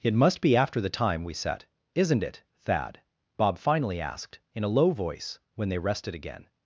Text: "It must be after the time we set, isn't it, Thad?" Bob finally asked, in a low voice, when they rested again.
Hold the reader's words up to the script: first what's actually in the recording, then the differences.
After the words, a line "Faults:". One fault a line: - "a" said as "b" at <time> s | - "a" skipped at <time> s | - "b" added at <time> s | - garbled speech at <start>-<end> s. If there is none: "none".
"It must be after the time we set, isn't it, Thad?" Bob finally asked, in a low voice, when they rested again.
Faults:
none